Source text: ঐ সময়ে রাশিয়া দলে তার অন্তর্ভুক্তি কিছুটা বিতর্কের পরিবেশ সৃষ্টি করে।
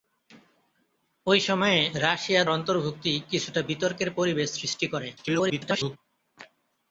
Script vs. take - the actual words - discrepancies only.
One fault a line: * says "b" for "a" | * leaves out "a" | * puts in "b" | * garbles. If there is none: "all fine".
* leaves out "দলে তার"
* garbles